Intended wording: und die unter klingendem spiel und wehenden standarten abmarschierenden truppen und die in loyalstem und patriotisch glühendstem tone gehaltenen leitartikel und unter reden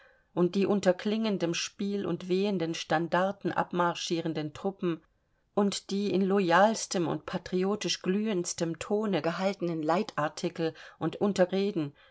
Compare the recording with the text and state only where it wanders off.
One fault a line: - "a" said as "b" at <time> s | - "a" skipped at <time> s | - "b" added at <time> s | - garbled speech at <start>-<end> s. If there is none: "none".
none